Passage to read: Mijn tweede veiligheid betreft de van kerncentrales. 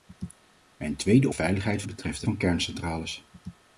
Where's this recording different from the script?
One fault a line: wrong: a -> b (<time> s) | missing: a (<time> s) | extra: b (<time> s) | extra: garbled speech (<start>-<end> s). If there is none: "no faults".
no faults